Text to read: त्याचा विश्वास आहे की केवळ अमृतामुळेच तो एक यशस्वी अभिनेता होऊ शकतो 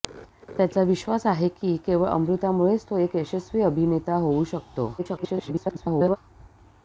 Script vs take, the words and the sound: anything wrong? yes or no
yes